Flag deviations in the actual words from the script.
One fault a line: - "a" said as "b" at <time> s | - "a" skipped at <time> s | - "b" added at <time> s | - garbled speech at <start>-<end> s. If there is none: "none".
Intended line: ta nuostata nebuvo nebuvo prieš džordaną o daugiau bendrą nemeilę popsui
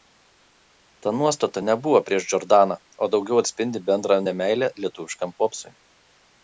- "nebuvo" skipped at 2.0 s
- "atspindi" added at 3.4 s
- "lietuviškam" added at 4.8 s